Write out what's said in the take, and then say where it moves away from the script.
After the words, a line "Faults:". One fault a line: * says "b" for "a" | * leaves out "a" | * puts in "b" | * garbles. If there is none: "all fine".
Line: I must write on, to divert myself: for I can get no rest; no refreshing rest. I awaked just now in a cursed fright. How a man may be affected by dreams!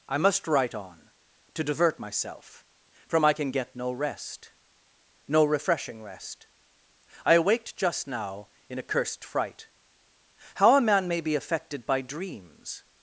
I must write on, to divert myself: from I can get no rest; no refreshing rest. I awaked just now in a cursed fright. How a man may be affected by dreams!
Faults:
* says "from" for "for"